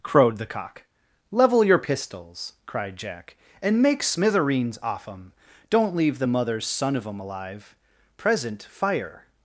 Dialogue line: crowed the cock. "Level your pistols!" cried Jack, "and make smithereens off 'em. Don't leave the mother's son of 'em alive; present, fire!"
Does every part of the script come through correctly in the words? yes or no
yes